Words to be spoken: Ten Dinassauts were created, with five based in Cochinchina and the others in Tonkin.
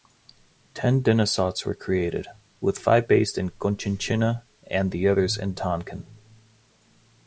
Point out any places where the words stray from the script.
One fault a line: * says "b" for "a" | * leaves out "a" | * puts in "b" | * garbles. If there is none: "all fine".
all fine